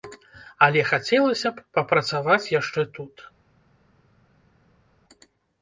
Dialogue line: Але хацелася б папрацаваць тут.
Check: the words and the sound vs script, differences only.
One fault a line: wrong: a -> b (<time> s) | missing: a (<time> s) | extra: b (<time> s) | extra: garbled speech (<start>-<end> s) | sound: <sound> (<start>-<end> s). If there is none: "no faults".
extra: яшчэ (2.6 s)